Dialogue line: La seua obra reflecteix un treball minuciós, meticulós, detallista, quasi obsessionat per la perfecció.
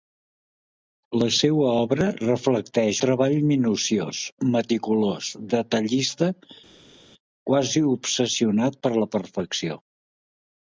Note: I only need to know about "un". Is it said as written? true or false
false